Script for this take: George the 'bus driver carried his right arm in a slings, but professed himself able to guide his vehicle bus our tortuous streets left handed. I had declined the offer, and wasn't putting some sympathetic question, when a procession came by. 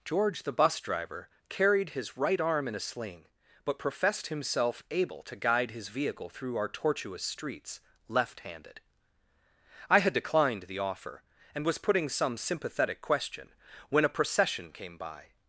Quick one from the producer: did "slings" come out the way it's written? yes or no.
no